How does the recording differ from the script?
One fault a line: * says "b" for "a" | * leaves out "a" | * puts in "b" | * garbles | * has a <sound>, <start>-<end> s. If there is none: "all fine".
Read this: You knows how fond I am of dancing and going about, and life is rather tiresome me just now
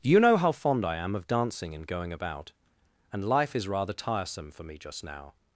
* says "know" for "knows"
* puts in "for"